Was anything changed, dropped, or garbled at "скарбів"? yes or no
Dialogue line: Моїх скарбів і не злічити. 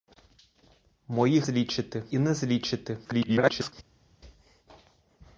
yes